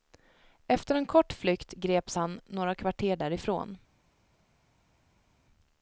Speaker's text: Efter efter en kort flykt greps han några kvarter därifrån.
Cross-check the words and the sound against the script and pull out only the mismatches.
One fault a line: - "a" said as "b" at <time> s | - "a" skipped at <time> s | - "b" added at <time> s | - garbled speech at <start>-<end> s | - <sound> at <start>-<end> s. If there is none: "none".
- "efter" skipped at 0.9 s